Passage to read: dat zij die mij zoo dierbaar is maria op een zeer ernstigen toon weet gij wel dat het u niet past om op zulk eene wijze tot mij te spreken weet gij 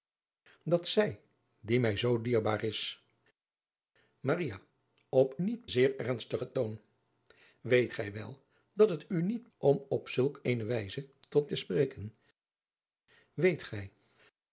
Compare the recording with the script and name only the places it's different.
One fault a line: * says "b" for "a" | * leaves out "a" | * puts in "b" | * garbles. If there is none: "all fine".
* says "niet" for "een"
* leaves out "past"
* leaves out "mij"